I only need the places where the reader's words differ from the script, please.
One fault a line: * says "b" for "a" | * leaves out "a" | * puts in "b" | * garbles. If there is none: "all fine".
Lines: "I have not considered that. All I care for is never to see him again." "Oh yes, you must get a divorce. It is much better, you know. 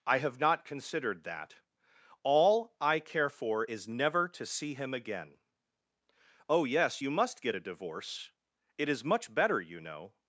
all fine